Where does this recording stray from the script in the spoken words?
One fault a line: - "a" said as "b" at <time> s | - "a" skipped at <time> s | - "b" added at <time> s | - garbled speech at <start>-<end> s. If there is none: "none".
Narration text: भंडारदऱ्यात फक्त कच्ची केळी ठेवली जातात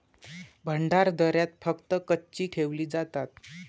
- "केळी" skipped at 2.5 s